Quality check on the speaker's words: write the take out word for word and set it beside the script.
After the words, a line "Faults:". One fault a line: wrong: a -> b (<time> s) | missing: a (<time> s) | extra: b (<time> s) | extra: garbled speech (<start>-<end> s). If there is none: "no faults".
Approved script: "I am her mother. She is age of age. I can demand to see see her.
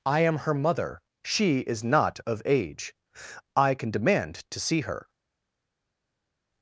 "I am her mother. She is not of age. I can demand to see her.
Faults:
wrong: age -> not (1.8 s)
missing: see (4.8 s)